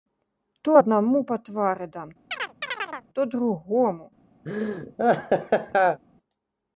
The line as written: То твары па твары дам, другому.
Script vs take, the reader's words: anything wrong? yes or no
yes